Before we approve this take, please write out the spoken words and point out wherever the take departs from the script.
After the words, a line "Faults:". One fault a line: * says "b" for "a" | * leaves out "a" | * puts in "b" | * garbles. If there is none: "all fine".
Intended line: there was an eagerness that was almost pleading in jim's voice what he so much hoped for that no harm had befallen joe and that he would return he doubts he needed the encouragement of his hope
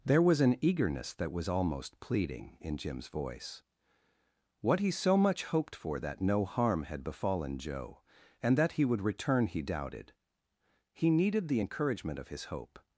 there was an eagerness that was almost pleading in jim's voice what he so much hoped for that no harm had befallen joe and that he would return he doubted he needed the encouragement of his hope
Faults:
* says "doubted" for "doubts"